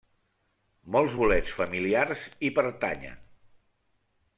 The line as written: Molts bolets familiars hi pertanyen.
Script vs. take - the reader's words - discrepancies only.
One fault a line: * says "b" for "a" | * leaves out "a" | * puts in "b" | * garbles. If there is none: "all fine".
all fine